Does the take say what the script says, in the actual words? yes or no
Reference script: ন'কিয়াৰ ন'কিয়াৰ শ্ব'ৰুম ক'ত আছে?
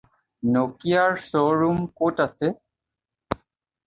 no